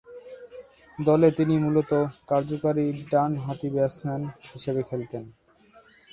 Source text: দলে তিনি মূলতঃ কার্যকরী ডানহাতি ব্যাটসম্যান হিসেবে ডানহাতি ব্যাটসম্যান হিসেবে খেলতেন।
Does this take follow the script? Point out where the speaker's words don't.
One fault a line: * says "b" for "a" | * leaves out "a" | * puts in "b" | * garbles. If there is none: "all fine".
* leaves out "ডানহাতি ব্যাটসম্যান হিসেবে"